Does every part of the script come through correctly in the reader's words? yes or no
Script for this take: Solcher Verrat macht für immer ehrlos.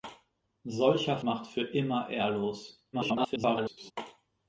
no